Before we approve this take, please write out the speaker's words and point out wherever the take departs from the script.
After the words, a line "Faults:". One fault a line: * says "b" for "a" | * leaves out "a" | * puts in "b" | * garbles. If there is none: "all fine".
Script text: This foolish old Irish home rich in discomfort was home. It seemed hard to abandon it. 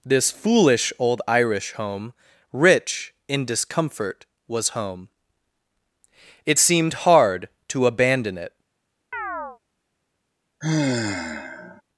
This foolish old Irish home rich in discomfort was home. It seemed hard to abandon it.
Faults:
all fine